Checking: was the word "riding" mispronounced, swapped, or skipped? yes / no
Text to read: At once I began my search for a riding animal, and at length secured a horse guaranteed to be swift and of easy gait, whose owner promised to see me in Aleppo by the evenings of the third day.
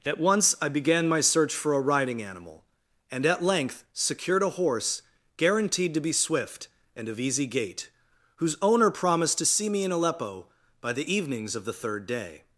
no